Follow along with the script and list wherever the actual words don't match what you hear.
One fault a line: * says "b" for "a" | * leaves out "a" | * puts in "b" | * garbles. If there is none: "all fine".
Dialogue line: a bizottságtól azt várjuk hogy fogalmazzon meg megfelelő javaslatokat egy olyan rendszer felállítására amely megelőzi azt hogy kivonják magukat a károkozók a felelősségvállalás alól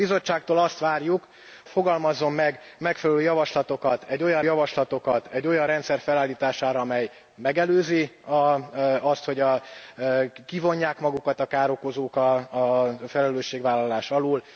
* leaves out "hogy"
* puts in "javaslatokat egy olyan"